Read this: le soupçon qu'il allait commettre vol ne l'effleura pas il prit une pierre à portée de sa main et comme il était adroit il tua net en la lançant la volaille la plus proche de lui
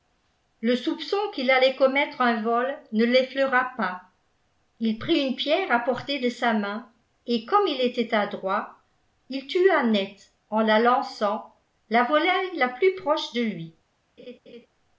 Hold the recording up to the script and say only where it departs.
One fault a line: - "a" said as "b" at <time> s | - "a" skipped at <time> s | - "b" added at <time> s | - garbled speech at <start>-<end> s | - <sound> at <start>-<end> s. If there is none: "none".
- "un" added at 2.2 s
- laugh at 14.2-14.7 s